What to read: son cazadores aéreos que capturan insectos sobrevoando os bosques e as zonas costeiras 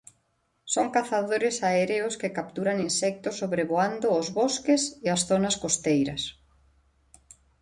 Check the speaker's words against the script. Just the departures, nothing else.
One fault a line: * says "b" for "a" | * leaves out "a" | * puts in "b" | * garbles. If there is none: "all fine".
all fine